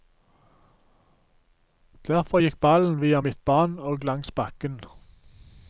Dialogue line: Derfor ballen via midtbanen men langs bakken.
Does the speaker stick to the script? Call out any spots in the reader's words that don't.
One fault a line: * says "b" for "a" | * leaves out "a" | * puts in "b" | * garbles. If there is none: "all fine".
* puts in "gikk"
* says "og" for "men"